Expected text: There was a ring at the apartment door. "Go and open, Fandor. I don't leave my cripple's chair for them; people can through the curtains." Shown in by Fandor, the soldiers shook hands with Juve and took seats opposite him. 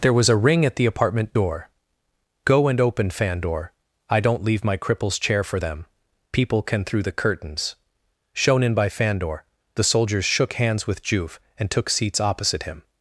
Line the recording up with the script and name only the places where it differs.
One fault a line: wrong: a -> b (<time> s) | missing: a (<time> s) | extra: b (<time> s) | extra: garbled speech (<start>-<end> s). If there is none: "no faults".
no faults